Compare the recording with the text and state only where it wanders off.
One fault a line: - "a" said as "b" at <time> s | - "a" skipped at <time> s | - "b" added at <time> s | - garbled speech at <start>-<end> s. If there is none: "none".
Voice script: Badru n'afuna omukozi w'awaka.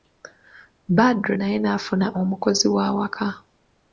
- "naye" added at 1.4 s